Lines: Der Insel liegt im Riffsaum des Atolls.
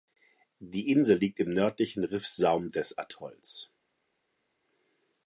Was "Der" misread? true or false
true